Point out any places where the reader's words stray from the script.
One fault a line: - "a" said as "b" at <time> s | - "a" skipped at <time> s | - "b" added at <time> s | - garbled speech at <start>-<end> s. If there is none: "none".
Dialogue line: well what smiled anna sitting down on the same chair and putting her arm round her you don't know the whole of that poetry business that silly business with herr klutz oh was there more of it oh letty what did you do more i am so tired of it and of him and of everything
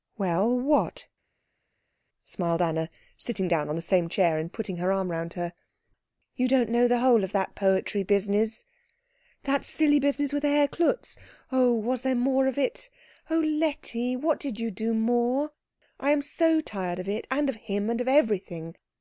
none